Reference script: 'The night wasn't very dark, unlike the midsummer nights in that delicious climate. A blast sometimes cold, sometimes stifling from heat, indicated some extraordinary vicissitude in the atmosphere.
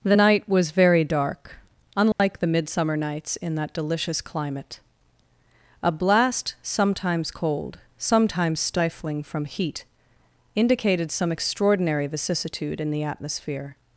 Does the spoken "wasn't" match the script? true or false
false